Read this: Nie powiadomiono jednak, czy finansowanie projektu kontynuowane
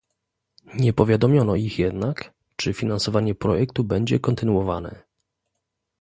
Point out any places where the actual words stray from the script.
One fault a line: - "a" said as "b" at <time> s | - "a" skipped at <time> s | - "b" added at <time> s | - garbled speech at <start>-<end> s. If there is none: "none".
- "ich" added at 1.6 s
- "będzie" added at 3.8 s